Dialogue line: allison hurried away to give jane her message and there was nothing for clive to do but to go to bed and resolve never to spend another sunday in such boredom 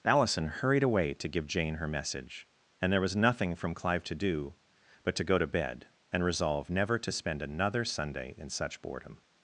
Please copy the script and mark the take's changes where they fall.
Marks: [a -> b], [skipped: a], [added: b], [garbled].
allison hurried away to give jane her message and there was nothing [for -> from] clive to do but to go to bed and resolve never to spend another sunday in such boredom